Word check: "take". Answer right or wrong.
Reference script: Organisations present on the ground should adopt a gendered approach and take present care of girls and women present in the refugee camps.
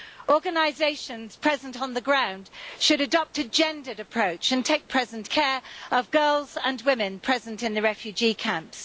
right